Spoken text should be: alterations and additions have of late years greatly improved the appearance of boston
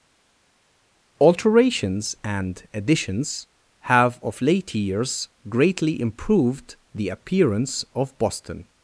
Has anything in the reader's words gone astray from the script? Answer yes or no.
no